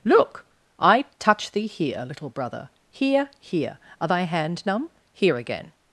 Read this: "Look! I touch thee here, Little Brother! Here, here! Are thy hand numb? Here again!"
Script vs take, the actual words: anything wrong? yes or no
no